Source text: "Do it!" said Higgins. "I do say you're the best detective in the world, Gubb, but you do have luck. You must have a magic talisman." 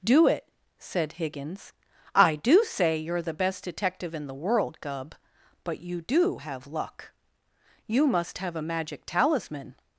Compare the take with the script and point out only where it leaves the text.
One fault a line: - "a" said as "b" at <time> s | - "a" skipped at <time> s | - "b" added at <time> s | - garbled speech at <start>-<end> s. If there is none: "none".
none